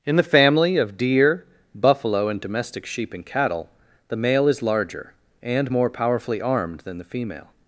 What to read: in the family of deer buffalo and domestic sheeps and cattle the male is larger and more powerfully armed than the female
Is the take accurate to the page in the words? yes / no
no